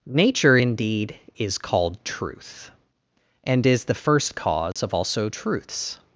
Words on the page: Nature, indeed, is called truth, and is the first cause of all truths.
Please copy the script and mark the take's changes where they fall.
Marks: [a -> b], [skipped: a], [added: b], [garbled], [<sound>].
Nature, indeed, is called truth, and is the first cause [dropout] of [all -> also] truths.